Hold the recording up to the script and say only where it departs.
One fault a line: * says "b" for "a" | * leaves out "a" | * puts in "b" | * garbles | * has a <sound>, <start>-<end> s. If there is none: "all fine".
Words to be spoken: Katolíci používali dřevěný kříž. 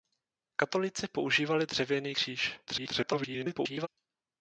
* garbles